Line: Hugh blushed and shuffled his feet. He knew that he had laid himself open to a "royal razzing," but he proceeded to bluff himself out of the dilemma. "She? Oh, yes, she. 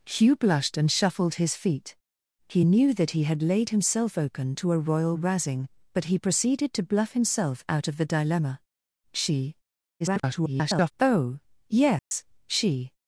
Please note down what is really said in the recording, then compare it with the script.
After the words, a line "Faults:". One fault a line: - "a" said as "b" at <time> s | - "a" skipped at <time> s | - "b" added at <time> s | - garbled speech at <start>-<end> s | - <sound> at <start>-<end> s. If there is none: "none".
Hugh blushed and shuffled his feet. He knew that he had laid himself open to a "royal razzing," but he proceeded to bluff himself out of the dilemma. "She? [garbled] Oh, yes, she.
Faults:
- garbled speech at 10.0-10.9 s
- dropout at 12.0-12.1 s